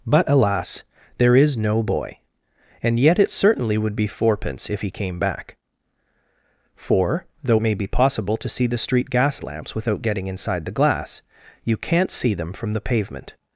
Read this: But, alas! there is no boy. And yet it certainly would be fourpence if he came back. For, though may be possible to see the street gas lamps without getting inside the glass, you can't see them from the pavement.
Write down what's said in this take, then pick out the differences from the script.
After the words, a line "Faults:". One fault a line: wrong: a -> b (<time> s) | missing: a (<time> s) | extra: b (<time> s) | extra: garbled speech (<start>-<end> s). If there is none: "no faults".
But, alas! there is no boy. And yet it certainly would be fourpence if he came back. For, though may be possible to see the street gas lamps without getting inside the glass, you can't see them from the pavement.
Faults:
no faults